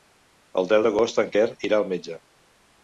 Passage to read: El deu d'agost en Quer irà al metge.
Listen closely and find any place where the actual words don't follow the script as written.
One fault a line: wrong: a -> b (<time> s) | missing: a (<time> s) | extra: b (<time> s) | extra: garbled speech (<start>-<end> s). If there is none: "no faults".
no faults